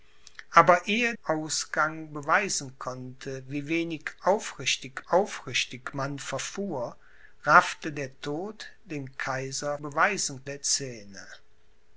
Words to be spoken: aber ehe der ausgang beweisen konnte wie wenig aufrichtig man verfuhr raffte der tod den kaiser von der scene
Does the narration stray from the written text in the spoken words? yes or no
yes